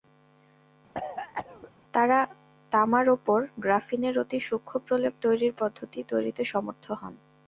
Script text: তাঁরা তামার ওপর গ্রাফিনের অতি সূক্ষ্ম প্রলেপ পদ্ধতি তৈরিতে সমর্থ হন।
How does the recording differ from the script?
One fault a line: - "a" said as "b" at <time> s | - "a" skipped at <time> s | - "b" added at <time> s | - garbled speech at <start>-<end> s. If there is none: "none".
- "তৈরির" added at 5.2 s